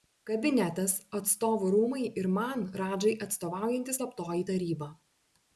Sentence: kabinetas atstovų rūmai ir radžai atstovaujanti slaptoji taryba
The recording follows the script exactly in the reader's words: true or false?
false